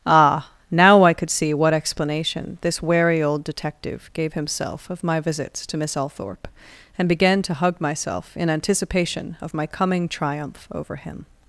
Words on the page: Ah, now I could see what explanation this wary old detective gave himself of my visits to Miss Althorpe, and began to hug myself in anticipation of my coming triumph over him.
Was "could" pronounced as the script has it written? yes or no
yes